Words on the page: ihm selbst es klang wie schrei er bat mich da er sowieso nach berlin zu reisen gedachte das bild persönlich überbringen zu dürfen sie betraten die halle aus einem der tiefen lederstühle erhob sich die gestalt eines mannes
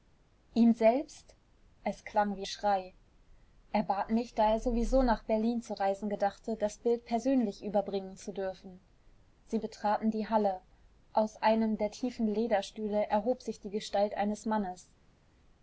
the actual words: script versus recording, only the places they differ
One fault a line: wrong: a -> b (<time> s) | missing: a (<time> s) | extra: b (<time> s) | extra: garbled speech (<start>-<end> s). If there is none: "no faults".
no faults